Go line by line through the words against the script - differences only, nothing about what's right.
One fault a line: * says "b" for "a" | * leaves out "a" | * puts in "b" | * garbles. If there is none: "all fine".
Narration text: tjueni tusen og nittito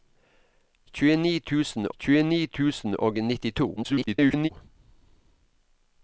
* puts in "tjueni tusen"
* garbles